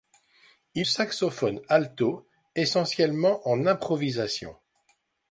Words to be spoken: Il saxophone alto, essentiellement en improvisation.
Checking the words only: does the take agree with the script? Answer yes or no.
yes